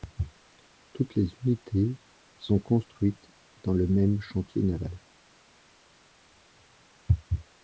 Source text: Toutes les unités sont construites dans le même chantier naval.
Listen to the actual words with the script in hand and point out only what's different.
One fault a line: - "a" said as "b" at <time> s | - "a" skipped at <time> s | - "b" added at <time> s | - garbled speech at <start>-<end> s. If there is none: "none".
none